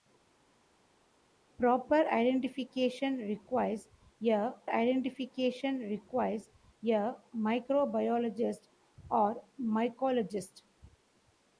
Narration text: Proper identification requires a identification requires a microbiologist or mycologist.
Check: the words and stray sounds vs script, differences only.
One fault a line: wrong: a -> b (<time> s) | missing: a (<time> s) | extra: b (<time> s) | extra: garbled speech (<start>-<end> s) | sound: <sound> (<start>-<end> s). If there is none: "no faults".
no faults